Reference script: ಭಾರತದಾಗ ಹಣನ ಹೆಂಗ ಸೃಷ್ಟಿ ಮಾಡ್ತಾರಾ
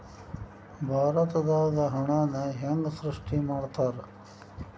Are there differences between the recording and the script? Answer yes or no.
no